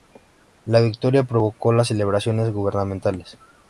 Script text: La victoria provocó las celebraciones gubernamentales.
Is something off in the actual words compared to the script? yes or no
no